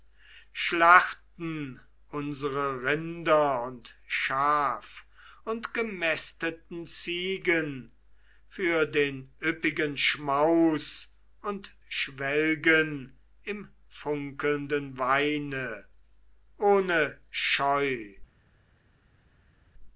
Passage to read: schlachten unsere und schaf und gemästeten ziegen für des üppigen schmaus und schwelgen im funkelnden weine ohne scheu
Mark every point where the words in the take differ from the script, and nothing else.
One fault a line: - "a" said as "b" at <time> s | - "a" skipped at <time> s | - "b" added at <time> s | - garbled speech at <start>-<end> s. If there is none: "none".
- "rinder" added at 2.8 s
- "des" said as "den" at 8.8 s